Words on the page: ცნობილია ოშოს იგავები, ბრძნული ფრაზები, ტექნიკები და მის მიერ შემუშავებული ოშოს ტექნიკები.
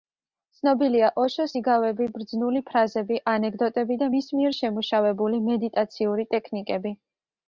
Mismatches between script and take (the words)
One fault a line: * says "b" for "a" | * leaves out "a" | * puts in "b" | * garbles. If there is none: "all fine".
* says "ანეკდოტები" for "ტექნიკები"
* says "მედიტაციური" for "ოშოს"